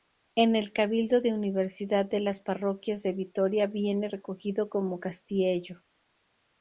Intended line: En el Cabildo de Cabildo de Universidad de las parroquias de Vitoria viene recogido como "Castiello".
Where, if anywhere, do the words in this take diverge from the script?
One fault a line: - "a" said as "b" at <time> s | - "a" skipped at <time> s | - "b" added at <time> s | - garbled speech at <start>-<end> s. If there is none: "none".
- "Cabildo de" skipped at 1.3 s